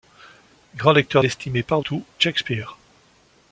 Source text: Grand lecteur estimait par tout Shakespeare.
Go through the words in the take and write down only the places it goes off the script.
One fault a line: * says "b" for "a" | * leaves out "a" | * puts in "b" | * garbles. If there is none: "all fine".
all fine